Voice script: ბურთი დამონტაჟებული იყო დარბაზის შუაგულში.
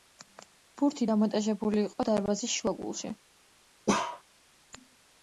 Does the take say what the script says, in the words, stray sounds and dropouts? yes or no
no